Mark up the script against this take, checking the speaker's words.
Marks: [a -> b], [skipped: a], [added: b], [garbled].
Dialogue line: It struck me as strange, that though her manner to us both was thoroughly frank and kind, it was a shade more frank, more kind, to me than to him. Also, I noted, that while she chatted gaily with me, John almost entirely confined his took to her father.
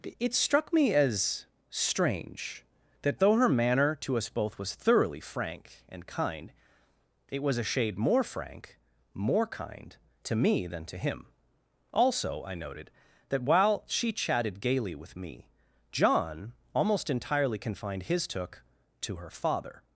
It struck me as strange, that though her manner to us both was thoroughly frank and kind, it was a shade more frank, more kind, to me than to him. Also, I noted, that while she chatted gaily with me, John almost entirely confined his took to her father.